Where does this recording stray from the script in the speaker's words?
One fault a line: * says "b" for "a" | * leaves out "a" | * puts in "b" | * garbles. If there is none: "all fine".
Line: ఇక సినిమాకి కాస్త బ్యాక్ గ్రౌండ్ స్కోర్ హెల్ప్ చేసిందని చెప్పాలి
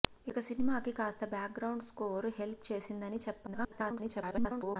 * garbles